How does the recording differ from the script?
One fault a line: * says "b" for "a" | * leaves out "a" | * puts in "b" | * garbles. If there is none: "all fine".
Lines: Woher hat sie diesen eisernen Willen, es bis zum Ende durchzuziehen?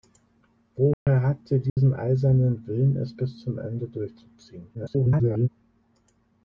* garbles